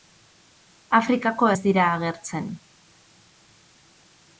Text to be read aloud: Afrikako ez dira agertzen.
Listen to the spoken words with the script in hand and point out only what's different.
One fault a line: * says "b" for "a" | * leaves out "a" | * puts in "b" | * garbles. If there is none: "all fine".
all fine